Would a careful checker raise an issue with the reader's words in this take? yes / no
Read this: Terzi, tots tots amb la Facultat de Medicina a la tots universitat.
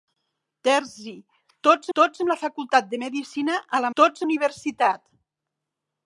no